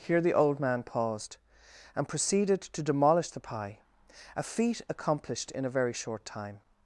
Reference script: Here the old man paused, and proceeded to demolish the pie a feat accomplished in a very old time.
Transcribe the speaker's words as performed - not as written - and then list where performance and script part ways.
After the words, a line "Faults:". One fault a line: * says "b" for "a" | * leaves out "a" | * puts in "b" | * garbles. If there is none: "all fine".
Here the old man paused, and proceeded to demolish the pie a feat accomplished in a very short time.
Faults:
* says "short" for "old"